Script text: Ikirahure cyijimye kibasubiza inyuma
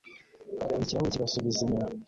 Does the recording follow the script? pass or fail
fail